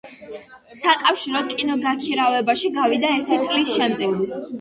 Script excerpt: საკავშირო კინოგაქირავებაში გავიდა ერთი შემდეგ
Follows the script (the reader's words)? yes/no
no